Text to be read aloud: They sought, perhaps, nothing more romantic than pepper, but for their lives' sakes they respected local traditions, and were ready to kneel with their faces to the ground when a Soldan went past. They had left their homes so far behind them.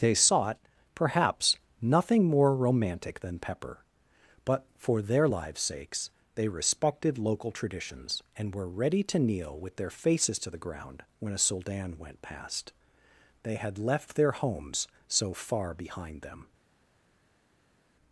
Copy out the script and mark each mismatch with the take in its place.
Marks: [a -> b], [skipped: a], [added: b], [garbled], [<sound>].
They sought, perhaps, nothing more romantic than pepper, but for their lives' sakes they respected local traditions, and were ready to kneel with their faces to the ground when a Soldan went past. They had left their homes so far behind them.